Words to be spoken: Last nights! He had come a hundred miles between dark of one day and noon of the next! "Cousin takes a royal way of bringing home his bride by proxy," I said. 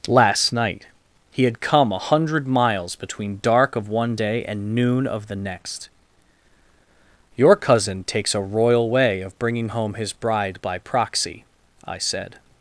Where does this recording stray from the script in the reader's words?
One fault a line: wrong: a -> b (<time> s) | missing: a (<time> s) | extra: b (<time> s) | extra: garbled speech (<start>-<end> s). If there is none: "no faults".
wrong: nights -> night (0.5 s)
extra: Your (7.3 s)